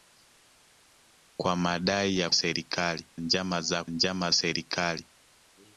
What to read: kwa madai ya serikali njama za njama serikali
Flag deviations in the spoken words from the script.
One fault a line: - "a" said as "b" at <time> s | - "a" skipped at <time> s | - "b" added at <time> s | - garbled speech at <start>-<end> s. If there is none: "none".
none